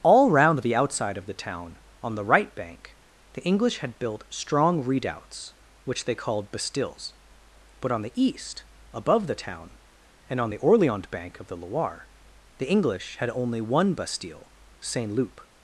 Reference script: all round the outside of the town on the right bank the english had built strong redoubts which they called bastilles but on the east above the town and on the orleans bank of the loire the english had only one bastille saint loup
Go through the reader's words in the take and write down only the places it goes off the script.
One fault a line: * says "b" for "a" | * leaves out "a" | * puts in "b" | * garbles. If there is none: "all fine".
all fine